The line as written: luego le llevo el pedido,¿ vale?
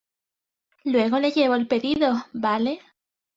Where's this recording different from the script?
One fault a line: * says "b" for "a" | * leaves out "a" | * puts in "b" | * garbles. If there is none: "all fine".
all fine